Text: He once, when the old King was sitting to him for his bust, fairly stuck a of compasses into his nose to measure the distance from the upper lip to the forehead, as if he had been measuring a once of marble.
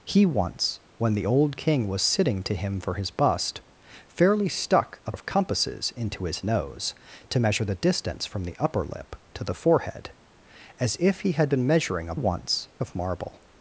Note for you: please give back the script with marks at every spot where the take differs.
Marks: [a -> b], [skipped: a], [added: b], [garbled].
He once, when the old King was sitting to him for his bust, fairly stuck a of compasses into his nose to measure the distance from the upper lip to the forehead, as if he had been measuring a once of marble.